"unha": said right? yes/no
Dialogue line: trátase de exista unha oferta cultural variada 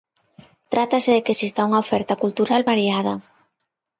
yes